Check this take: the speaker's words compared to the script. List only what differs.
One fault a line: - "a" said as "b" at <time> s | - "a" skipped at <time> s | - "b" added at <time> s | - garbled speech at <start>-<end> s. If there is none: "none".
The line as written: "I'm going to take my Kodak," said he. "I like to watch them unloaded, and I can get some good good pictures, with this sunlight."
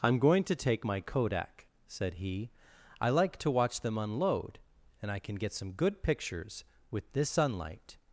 - "unloaded" said as "unload" at 4.0 s
- "good" skipped at 6.0 s